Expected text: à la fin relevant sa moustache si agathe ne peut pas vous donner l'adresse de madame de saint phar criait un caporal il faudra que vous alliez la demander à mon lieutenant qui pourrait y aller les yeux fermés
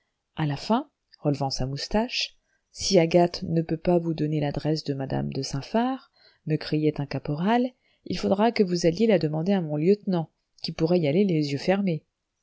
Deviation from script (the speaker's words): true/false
true